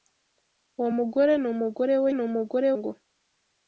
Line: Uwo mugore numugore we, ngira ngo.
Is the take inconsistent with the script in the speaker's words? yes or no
yes